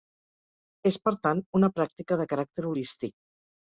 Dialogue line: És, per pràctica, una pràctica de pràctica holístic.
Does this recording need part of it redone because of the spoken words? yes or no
yes